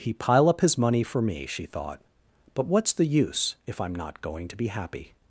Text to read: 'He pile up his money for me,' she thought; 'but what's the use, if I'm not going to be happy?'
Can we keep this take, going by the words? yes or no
yes